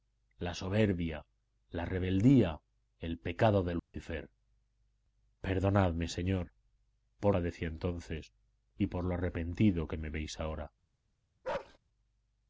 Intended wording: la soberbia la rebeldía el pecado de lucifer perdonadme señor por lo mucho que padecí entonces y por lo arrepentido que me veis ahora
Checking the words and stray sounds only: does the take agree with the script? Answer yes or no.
no